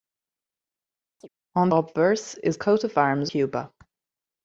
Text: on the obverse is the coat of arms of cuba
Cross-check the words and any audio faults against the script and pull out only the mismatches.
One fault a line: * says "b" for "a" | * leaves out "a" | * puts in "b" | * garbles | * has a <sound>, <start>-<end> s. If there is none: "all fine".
* has a chirp, 1.2-1.3 s
* leaves out "the"
* leaves out "the"
* leaves out "of"